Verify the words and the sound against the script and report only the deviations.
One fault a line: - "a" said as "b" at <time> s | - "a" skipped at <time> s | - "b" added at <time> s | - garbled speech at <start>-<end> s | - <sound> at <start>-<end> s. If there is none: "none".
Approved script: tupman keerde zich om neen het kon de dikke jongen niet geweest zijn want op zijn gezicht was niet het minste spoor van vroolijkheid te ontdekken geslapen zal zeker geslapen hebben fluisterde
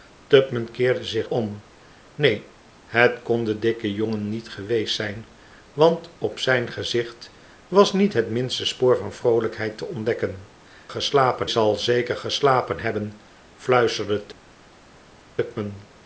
none